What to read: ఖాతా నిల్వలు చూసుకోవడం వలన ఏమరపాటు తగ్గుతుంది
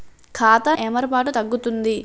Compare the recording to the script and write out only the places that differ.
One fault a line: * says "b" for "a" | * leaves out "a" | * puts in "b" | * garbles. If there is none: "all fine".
* leaves out "నిల్వలు చూసుకోవడం వలన"